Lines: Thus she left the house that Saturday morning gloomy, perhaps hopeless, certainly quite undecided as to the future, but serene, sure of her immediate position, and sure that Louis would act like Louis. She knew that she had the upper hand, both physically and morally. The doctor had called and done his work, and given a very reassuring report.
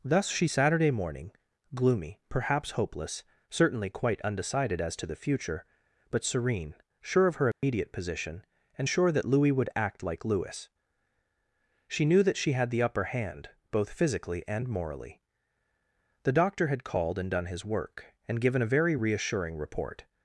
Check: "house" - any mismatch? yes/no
yes